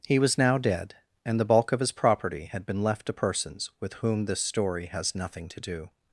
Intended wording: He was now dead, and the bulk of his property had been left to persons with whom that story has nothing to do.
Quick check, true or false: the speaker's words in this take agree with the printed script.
false